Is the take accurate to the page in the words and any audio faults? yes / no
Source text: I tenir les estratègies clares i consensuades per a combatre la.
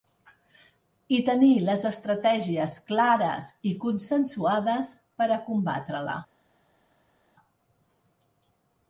yes